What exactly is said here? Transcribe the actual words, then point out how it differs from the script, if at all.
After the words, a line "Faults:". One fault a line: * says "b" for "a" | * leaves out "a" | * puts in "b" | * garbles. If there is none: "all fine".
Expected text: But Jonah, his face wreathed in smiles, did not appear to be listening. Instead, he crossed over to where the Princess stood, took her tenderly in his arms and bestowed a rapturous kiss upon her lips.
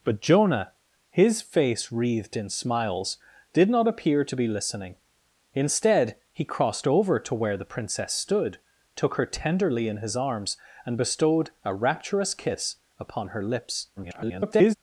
But Jonah, his face wreathed in smiles, did not appear to be listening. Instead, he crossed over to where the Princess stood, took her tenderly in his arms and bestowed a rapturous kiss upon her lips. [garbled]
Faults:
* garbles